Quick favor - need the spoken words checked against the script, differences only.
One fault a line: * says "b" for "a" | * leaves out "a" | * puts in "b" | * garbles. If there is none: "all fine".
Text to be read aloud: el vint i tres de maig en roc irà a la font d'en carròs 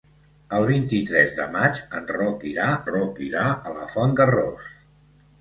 * puts in "roc irà"
* leaves out "d'en"